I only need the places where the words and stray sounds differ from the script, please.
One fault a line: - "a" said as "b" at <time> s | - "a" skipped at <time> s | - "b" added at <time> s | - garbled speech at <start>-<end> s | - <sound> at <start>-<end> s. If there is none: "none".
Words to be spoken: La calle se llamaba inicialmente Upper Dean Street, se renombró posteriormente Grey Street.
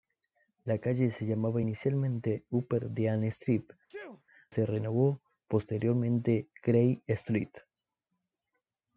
- sneeze at 3.9-4.2 s